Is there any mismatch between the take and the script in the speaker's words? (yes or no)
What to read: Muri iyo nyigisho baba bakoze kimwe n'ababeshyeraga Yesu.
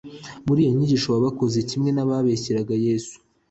no